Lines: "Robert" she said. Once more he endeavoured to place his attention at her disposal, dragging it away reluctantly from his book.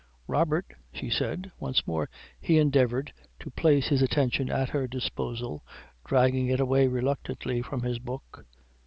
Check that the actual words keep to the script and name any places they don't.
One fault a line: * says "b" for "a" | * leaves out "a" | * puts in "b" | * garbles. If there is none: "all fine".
all fine